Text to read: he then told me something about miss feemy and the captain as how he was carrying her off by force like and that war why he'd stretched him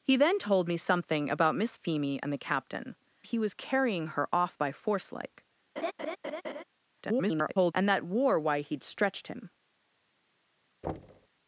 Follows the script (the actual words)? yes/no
no